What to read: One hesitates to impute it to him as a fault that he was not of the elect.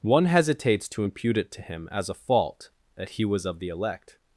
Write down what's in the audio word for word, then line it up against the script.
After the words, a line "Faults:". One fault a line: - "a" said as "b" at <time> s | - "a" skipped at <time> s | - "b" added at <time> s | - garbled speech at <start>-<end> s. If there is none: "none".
One hesitates to impute it to him as a fault that he was of the elect.
Faults:
- "not" skipped at 3.5 s